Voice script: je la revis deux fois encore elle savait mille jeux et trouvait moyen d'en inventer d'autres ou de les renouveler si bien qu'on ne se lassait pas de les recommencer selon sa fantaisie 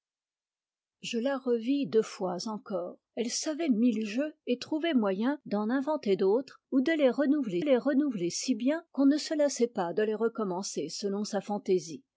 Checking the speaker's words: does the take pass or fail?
fail